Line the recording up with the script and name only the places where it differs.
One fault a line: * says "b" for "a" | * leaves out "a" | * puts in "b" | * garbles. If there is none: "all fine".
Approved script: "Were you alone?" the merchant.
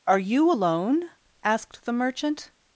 * says "Are" for "Were"
* puts in "asked"